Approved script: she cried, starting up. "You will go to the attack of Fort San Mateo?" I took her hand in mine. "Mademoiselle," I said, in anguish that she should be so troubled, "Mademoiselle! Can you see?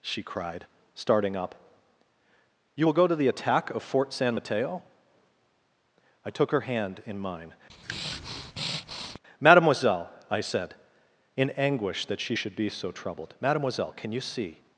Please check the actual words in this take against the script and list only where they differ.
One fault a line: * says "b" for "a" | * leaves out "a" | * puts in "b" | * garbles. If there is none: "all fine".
all fine